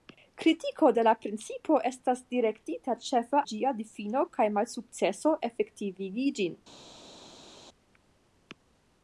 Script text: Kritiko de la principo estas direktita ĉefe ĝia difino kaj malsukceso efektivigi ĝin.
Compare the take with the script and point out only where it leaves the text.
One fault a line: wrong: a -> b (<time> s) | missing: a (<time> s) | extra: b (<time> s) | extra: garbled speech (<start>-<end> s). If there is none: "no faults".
no faults